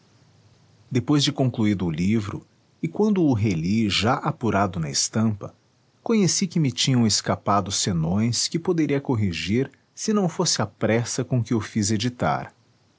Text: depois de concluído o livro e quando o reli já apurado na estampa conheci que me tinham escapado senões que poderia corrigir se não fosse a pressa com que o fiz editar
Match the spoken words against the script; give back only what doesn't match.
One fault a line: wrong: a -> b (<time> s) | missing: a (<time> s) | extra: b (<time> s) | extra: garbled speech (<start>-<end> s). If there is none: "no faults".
no faults